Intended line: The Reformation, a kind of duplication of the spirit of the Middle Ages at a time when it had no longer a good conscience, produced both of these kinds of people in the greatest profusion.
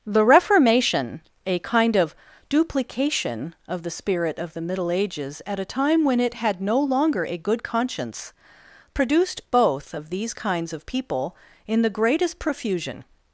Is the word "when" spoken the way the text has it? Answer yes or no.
yes